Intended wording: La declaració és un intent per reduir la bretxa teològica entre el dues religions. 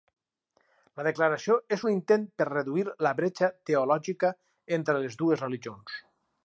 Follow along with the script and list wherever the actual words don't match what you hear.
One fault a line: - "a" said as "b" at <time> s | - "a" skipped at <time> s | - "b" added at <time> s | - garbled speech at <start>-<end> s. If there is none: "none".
- "el" said as "les" at 5.1 s